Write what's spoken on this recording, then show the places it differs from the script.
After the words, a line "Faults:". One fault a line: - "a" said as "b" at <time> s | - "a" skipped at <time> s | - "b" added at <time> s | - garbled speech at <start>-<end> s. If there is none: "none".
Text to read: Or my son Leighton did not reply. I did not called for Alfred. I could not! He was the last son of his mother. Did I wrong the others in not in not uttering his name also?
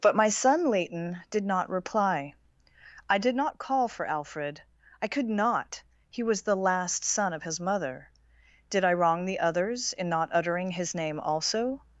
But my son Leighton did not reply. I did not call for Alfred. I could not! He was the last son of his mother. Did I wrong the others in not uttering his name also?
Faults:
- "Or" said as "But" at 0.0 s
- "called" said as "call" at 3.6 s
- "in not" skipped at 10.3 s